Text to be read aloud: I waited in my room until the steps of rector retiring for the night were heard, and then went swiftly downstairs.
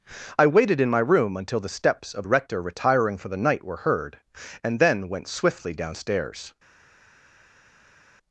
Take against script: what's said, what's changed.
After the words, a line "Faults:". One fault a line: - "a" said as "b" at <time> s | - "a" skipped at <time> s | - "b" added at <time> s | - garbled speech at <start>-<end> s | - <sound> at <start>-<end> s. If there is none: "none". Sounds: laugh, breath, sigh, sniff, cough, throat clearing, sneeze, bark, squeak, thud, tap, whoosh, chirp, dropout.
I waited in my room until the steps of rector retiring for the night were heard, and then went swiftly downstairs.
Faults:
none